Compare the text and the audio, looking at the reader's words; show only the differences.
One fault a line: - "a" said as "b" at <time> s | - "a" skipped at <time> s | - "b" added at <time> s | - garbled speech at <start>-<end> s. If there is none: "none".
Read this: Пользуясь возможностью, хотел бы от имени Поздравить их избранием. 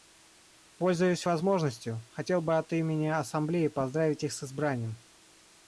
- "Ассамблеи" added at 3.1 s
- "с" added at 4.3 s